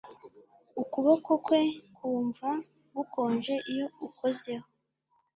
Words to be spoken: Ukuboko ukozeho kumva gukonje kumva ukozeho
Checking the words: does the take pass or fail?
fail